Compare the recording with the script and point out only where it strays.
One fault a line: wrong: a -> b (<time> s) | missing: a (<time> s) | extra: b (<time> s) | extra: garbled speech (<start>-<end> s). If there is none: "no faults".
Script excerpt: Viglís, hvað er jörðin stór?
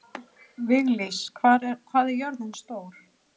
no faults